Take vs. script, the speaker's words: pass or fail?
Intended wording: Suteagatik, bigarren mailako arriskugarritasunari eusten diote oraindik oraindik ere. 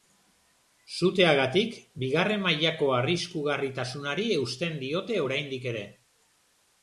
fail